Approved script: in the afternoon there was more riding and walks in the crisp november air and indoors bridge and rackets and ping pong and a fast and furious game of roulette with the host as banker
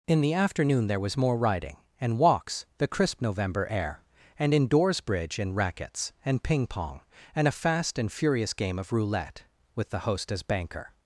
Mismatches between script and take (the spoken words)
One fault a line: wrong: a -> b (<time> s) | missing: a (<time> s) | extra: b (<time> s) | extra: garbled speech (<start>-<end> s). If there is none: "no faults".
missing: in (2.6 s)